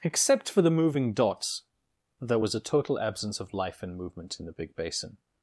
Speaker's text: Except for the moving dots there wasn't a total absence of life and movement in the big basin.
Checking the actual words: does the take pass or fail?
fail